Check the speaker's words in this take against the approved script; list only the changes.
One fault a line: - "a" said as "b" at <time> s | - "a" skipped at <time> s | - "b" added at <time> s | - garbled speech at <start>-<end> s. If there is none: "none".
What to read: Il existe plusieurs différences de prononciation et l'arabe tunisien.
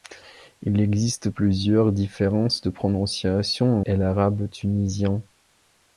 none